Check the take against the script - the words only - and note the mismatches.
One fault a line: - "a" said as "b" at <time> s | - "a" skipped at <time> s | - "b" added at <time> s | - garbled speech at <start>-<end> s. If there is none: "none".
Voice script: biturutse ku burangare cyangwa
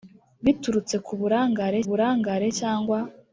- "burangare" added at 1.9 s